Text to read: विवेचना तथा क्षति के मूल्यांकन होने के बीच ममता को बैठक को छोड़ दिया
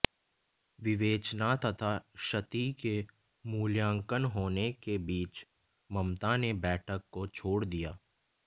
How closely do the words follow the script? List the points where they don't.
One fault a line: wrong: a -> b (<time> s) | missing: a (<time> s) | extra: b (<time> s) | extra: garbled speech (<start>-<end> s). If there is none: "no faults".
wrong: को -> ने (6.4 s)